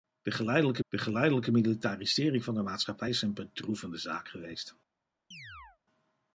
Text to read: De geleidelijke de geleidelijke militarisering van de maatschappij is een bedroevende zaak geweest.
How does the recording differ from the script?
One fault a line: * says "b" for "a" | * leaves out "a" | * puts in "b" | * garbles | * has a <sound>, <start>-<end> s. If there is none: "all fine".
* has a chirp, 5.3-5.8 s